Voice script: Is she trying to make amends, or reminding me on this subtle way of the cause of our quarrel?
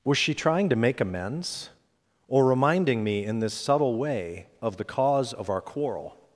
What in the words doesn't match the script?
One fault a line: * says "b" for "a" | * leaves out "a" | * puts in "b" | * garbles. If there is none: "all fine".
* says "Was" for "Is"
* says "in" for "on"